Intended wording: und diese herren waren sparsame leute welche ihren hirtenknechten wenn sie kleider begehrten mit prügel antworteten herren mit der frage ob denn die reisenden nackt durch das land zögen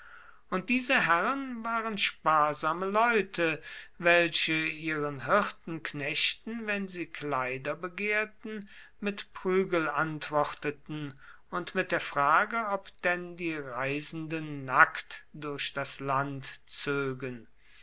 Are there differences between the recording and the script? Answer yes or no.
yes